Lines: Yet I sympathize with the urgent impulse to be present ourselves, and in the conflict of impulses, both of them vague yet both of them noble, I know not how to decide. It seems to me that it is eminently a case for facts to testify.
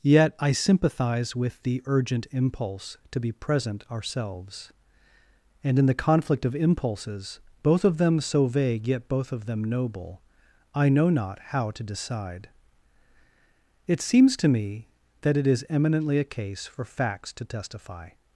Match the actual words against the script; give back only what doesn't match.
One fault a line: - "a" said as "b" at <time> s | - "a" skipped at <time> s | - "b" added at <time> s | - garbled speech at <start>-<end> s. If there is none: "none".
- "so" added at 8.2 s